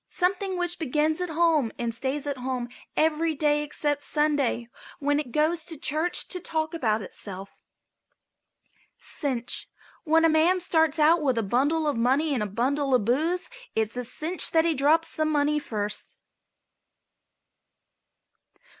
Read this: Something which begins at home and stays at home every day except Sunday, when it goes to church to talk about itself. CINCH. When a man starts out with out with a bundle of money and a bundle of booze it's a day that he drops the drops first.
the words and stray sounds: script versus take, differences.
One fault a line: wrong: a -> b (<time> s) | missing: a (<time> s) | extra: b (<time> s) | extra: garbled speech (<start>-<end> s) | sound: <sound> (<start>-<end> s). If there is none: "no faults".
missing: out with (11.4 s)
wrong: day -> cinch (14.0 s)
wrong: drops -> money (15.2 s)